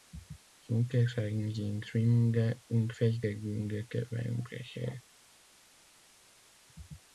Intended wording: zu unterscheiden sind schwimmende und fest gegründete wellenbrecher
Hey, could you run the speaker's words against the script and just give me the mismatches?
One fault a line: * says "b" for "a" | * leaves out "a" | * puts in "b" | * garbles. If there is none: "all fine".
all fine